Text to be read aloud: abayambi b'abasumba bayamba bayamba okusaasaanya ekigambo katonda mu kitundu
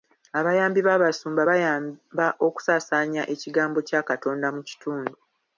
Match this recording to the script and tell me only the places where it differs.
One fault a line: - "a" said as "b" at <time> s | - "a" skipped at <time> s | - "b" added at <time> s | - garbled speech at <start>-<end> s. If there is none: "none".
- "bayamba" skipped at 2.3 s
- "kya" added at 3.9 s